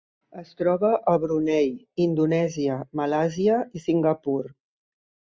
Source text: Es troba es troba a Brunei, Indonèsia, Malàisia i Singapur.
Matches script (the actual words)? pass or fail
fail